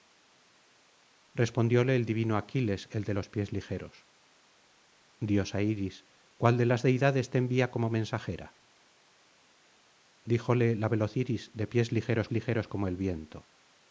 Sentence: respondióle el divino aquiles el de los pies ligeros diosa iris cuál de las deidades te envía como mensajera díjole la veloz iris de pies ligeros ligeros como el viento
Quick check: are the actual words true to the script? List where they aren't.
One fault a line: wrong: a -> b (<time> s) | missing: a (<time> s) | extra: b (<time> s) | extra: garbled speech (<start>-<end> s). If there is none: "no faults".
no faults